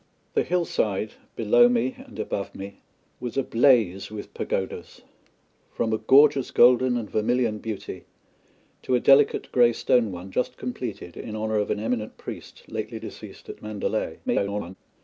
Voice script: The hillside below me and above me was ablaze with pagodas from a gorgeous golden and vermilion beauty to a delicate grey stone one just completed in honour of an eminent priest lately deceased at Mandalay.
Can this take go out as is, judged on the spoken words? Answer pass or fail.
fail